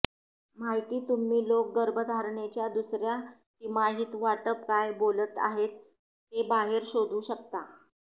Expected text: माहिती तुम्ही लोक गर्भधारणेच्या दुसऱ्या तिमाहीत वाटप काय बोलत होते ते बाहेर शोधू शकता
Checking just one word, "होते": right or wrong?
wrong